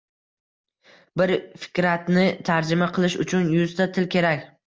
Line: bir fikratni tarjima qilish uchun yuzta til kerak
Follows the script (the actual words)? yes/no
yes